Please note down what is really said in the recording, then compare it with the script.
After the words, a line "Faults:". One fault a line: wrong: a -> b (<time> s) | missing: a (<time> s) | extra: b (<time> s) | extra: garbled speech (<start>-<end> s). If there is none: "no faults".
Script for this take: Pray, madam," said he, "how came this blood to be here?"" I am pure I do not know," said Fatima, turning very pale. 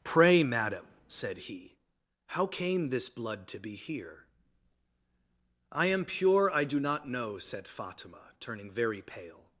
Pray, madam," said he, "how came this blood to be here?"" I am pure I do not know," said Fatima, turning very pale.
Faults:
no faults